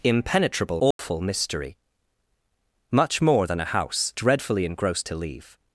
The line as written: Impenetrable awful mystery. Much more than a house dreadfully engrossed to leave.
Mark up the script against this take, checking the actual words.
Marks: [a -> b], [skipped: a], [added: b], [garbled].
Impenetrable awful mystery. Much more than a house dreadfully engrossed to leave.